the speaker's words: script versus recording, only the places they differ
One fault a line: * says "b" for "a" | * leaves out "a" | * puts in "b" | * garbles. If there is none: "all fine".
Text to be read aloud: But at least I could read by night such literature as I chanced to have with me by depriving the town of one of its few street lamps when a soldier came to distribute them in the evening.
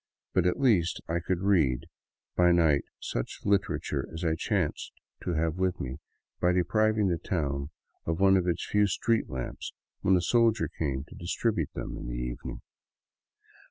all fine